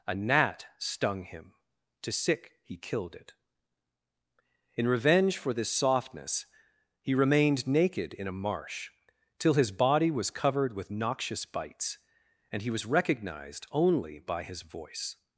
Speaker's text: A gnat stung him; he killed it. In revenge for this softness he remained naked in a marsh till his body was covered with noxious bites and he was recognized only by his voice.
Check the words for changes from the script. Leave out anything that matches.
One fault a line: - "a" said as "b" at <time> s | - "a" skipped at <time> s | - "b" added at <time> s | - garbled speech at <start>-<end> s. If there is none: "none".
- "to sick" added at 2.0 s